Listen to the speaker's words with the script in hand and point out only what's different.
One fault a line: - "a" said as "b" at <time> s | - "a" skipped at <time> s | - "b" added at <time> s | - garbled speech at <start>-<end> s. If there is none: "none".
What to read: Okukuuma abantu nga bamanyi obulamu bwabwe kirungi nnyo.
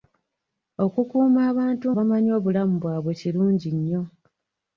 - "nga" skipped at 1.9 s